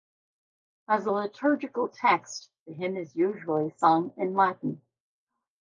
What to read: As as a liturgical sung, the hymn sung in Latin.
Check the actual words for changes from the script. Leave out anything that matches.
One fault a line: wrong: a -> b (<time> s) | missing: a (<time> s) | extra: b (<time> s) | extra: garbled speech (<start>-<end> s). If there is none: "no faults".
missing: as (1.1 s)
wrong: sung -> text (1.9 s)
extra: is usually (3.0 s)